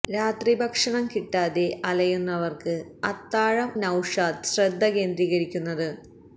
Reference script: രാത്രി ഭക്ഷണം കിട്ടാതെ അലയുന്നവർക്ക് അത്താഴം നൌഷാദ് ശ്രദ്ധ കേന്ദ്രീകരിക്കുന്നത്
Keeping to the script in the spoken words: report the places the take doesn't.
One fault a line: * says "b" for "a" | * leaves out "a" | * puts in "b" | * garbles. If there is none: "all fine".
all fine